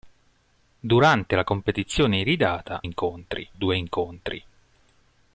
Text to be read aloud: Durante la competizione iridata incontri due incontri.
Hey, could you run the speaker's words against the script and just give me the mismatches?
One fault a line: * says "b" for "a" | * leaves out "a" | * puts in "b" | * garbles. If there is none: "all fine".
all fine